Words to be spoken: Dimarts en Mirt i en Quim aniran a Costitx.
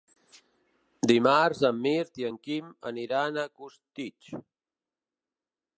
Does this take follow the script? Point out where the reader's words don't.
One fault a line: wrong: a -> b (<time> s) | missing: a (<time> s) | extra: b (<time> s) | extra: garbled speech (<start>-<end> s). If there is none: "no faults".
no faults